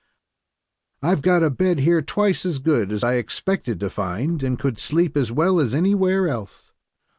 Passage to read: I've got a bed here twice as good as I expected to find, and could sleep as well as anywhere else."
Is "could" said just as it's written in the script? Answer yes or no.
yes